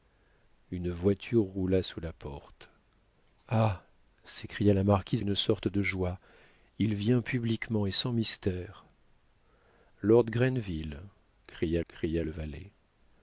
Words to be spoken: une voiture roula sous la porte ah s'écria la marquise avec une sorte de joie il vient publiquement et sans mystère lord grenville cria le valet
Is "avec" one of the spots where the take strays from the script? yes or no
yes